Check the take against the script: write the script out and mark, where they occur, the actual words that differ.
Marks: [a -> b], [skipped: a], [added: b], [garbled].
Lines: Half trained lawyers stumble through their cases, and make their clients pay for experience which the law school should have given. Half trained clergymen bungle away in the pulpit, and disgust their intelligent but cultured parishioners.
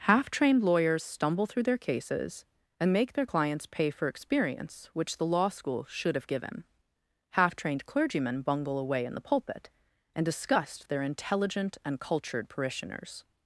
Half trained lawyers stumble through their cases, and make their clients pay for experience which the law school should have given. Half trained clergymen bungle away in the pulpit, and disgust their intelligent [but -> and] cultured parishioners.